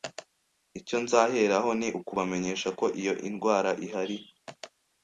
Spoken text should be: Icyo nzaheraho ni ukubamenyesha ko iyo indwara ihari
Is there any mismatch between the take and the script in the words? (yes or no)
no